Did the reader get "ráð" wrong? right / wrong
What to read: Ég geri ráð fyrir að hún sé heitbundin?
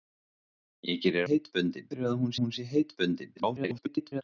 wrong